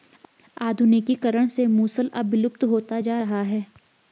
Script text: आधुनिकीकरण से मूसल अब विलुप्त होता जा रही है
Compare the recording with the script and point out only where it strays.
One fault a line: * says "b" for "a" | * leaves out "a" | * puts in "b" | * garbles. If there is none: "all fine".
* says "रहा" for "रही"